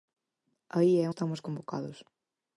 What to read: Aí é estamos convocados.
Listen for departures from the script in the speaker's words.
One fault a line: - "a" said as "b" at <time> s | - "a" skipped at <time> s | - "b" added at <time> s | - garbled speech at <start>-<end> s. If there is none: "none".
none